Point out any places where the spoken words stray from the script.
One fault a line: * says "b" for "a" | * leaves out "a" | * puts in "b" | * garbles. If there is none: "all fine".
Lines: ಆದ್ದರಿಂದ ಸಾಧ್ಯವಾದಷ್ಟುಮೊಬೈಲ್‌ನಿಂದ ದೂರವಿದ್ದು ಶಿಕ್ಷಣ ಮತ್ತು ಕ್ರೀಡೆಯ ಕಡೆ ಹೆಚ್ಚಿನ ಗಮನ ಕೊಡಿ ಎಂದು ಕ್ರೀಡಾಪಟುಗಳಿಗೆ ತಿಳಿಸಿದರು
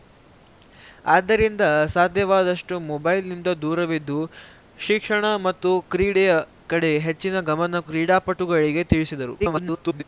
* leaves out "ಕೊಡಿ ಎಂದು"
* garbles